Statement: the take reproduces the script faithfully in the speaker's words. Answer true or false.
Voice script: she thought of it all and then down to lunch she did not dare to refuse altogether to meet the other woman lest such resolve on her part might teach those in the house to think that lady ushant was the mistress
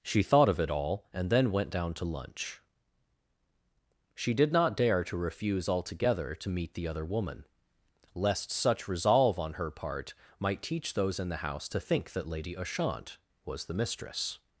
false